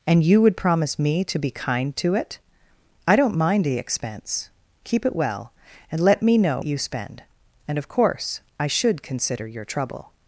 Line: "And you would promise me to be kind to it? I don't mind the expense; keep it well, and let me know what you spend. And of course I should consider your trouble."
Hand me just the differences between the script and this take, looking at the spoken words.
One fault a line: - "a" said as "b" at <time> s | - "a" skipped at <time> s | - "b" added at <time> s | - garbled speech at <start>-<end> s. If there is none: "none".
- "what" skipped at 6.6 s